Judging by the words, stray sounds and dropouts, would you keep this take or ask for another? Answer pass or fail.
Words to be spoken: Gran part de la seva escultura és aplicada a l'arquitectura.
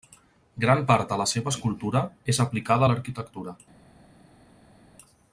pass